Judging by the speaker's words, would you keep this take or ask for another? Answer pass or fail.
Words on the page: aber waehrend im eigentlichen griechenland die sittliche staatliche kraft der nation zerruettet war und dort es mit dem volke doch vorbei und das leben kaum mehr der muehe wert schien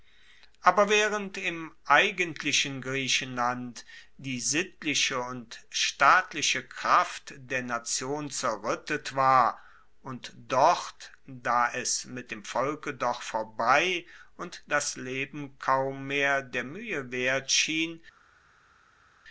fail